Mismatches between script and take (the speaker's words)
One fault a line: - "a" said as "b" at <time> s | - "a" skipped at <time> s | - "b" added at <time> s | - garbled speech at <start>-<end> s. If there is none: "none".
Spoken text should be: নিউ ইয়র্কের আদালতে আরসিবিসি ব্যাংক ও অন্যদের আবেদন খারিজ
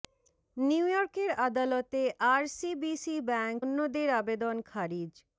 - "ও" skipped at 3.6 s